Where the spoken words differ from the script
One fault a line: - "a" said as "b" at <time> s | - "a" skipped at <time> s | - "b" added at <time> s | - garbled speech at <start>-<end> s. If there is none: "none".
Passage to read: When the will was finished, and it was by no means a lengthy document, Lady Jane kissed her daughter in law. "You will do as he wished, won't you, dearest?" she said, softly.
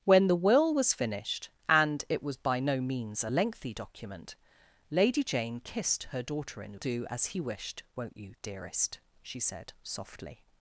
- "law You will" skipped at 6.8 s